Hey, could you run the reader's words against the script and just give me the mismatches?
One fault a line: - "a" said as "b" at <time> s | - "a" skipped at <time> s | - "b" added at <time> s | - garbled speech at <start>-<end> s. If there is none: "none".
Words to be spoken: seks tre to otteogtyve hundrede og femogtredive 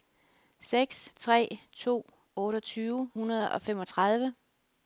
none